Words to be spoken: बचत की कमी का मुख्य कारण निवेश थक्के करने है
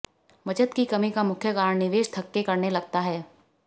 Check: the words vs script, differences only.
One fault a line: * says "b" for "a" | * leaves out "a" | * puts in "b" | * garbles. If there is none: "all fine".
* puts in "लगता"